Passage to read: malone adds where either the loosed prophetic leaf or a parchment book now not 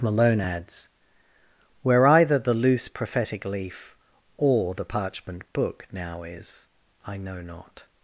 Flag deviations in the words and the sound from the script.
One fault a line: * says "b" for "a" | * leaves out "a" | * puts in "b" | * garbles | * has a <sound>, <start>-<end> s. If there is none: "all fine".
* says "loose" for "loosed"
* says "the" for "a"
* puts in "is i know"